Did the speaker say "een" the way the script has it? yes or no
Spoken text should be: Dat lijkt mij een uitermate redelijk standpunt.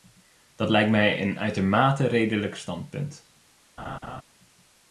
yes